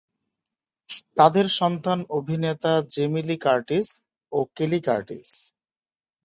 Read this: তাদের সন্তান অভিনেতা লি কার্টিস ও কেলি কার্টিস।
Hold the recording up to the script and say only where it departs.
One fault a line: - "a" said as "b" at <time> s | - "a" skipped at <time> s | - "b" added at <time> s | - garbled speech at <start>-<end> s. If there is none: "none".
- "জেমি" added at 2.9 s